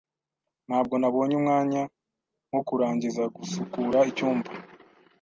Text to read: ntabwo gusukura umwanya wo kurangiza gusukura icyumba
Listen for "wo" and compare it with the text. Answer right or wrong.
right